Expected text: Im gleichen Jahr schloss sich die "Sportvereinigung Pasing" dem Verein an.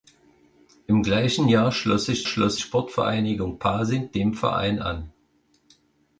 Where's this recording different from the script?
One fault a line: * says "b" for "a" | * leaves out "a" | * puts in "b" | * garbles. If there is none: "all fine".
* says "schloss" for "die"